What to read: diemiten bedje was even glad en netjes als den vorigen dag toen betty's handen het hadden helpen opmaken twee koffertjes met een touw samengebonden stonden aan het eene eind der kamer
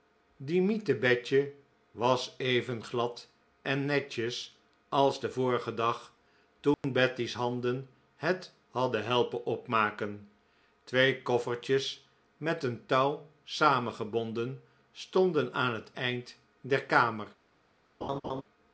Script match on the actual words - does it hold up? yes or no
no